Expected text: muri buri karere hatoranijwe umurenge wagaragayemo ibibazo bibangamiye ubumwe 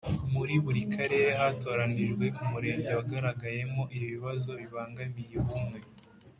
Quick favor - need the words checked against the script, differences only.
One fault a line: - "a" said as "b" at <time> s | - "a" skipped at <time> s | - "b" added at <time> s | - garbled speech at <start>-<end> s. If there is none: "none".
none